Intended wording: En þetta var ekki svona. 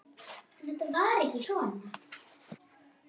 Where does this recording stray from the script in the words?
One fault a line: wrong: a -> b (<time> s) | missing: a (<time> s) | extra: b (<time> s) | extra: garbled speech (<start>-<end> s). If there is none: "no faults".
no faults